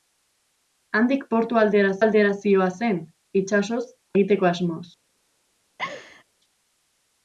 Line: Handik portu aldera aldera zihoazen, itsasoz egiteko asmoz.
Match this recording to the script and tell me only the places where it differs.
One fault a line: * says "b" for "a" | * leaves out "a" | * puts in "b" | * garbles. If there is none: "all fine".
all fine